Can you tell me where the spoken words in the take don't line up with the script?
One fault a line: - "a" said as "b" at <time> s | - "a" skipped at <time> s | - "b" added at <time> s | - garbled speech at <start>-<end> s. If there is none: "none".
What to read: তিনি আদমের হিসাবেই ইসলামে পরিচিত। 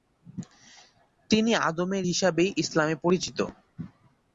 none